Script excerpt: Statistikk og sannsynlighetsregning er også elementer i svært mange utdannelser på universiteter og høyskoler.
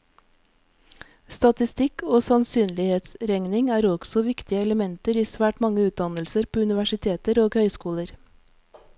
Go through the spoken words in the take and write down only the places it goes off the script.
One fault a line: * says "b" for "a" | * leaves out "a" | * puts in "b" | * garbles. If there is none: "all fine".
* puts in "viktige"